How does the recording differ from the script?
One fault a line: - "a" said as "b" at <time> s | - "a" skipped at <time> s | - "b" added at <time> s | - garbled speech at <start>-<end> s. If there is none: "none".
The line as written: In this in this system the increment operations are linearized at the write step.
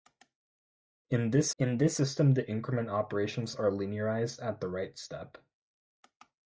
none